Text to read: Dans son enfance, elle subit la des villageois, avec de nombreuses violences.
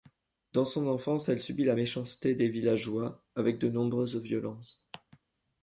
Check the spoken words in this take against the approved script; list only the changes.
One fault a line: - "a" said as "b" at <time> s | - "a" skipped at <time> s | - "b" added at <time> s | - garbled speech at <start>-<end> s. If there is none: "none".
- "méchanceté" added at 1.7 s